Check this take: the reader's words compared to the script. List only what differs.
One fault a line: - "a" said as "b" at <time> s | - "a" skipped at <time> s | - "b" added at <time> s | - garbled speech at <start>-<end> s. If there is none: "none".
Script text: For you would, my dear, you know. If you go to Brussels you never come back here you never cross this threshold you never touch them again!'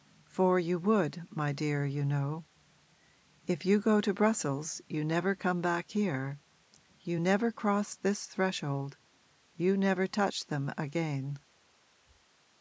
none